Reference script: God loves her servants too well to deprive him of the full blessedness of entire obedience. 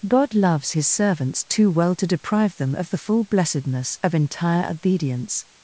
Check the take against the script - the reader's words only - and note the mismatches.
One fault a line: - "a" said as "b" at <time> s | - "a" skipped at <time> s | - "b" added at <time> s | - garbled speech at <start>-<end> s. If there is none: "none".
- "her" said as "his" at 0.7 s
- "him" said as "them" at 2.6 s